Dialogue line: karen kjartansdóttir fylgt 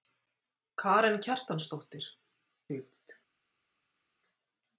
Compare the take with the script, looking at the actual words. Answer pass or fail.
pass